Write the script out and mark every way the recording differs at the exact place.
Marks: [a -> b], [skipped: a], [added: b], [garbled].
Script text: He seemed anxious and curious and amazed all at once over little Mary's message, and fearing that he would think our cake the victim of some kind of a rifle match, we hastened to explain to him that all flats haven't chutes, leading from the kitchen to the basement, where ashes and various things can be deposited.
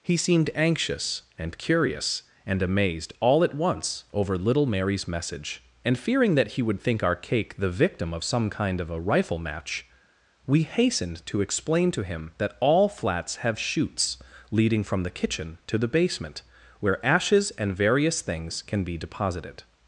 He seemed anxious and curious and amazed all at once over little Mary's message, and fearing that he would think our cake the victim of some kind of a rifle match, we hastened to explain to him that all flats [haven't -> have] chutes, leading from the kitchen to the basement, where ashes and various things can be deposited.